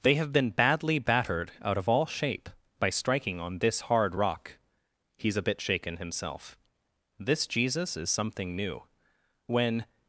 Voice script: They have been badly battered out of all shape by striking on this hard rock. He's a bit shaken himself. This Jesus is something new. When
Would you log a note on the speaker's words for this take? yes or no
no